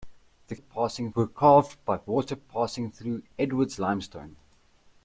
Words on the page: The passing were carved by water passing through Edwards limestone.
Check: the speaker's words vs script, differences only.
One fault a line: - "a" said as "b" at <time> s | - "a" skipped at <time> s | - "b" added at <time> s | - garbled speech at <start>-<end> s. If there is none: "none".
none